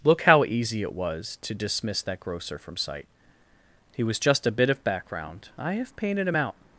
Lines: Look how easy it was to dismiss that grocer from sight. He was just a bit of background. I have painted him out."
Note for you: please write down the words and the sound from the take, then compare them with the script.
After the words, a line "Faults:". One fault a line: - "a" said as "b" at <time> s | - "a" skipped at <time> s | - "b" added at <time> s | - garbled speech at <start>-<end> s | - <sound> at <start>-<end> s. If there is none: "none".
Look how easy it was to dismiss that grocer from sight. He was just a bit of background. I have painted him out."
Faults:
none